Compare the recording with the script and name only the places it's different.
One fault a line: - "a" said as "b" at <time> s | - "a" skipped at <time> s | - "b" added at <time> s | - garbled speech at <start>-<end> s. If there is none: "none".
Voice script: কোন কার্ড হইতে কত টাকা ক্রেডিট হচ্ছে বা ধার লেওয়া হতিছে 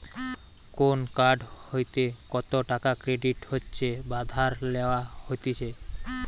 none